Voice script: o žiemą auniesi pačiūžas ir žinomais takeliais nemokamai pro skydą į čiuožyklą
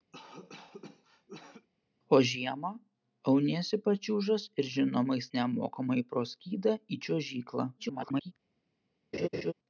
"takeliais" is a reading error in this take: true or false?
true